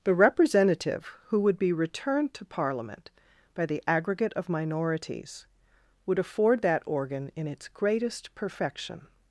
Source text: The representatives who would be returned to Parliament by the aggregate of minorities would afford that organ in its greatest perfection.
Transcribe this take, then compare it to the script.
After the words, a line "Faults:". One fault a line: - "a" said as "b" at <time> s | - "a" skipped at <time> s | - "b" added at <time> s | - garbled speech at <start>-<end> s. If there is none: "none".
The representative who would be returned to Parliament by the aggregate of minorities would afford that organ in its greatest perfection.
Faults:
- "representatives" said as "representative" at 0.1 s